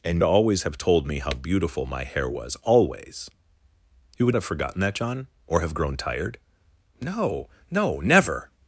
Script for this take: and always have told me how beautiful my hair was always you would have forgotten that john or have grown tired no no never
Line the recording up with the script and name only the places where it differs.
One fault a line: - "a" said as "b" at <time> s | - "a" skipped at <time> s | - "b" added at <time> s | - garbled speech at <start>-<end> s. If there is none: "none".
none